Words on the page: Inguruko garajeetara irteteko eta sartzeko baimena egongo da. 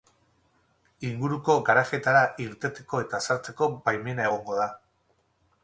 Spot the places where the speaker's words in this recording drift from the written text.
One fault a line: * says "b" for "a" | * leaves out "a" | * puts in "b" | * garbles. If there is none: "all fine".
all fine